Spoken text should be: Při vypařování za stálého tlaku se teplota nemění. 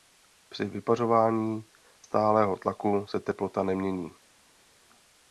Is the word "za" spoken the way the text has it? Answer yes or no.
no